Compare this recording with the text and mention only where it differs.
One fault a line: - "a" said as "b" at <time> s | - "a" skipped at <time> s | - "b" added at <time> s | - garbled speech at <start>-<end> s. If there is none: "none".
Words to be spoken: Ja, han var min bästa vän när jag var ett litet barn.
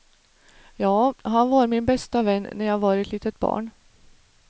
none